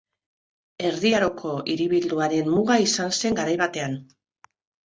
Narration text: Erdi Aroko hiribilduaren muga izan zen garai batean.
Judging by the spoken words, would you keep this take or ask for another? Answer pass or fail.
pass